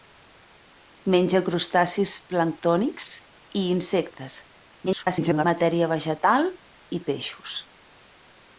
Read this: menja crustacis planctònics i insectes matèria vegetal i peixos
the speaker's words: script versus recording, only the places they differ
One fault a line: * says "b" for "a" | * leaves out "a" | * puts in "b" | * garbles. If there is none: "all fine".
* garbles